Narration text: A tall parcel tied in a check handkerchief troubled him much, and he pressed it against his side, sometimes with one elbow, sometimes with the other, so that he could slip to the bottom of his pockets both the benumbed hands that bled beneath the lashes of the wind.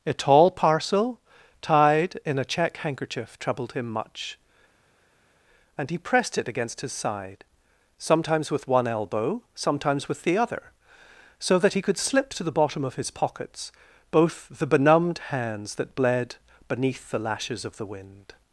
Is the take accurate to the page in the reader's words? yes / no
yes